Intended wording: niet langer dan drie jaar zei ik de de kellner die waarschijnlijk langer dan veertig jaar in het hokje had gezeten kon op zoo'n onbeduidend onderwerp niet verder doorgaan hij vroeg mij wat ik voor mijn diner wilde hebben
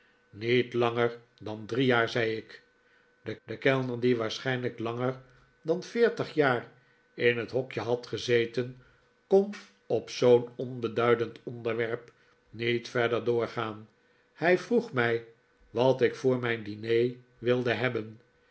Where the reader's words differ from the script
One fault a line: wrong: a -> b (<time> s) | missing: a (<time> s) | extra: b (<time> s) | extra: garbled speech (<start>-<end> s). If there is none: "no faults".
no faults